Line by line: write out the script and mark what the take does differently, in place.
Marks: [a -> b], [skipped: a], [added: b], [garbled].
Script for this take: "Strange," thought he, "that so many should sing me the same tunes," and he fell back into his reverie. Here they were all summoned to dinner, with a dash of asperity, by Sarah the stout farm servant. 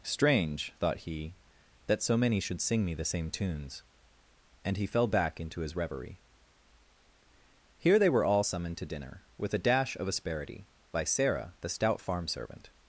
"Strange," thought he, "that so many should sing me the same tunes," and he fell back into his reverie. Here they were all summoned to dinner, with a dash of asperity, by Sarah the stout farm servant.